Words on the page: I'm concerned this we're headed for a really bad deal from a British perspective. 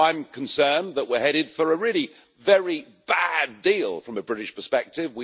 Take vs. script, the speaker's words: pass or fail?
fail